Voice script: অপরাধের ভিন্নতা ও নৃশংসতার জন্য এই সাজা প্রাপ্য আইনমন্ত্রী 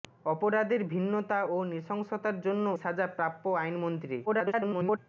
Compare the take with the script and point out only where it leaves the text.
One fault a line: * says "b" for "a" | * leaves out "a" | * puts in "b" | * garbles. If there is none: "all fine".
* leaves out "এই"
* garbles